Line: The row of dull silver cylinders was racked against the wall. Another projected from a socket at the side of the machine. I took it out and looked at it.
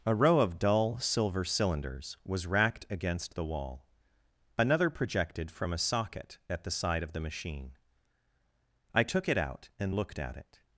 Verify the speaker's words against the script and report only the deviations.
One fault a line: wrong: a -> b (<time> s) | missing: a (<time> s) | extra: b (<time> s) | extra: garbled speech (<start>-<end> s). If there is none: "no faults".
wrong: The -> A (0.0 s)